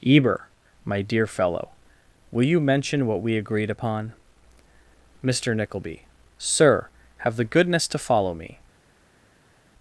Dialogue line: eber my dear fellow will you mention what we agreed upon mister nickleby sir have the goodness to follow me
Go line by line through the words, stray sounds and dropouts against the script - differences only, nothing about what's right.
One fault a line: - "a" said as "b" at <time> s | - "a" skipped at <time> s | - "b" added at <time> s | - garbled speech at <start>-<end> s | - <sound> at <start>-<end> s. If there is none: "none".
none